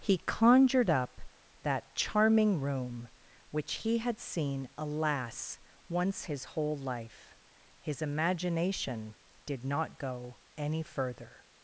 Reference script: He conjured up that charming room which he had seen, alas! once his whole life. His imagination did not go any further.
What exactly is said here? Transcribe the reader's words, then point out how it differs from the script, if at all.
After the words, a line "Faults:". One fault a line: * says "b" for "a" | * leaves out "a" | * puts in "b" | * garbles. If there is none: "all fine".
He conjured up that charming room which he had seen, alas! once his whole life. His imagination did not go any further.
Faults:
all fine